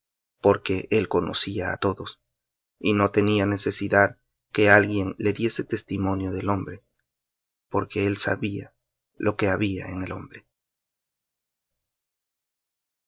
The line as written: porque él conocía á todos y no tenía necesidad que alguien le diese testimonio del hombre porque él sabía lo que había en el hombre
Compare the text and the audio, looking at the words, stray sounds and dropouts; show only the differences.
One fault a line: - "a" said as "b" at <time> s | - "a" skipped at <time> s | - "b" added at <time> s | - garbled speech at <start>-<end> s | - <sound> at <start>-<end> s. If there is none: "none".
none